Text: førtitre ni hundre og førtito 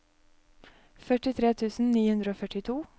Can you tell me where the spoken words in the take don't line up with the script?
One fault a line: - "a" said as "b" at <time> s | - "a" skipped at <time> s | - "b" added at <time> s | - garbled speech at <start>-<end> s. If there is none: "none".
- "tusen" added at 1.6 s